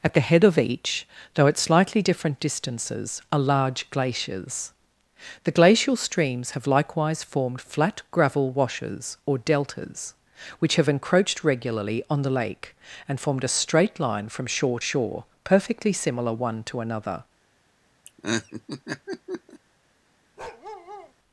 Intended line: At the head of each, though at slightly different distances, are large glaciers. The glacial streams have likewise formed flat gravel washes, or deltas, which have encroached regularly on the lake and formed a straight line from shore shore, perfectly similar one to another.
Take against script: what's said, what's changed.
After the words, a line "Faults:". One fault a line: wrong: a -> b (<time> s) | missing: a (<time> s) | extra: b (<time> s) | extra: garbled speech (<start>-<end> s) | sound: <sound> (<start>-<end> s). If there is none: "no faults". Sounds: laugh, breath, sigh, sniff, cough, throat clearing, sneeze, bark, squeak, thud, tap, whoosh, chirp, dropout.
At the head of each, though at slightly different distances, are large glaciers. The glacial streams have likewise formed flat gravel washes, or deltas, which have encroached regularly on the lake and formed a straight line from shore shore, perfectly similar one to another.
Faults:
sound: laugh (18.1-19.6 s)
sound: bark (20.4-21.1 s)